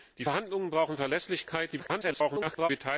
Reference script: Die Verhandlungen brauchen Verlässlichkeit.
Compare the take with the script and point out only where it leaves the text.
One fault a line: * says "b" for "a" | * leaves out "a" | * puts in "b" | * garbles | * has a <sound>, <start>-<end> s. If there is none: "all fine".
* garbles